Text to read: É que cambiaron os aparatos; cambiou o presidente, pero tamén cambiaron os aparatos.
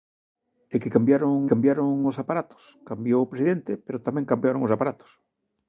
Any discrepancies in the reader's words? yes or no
yes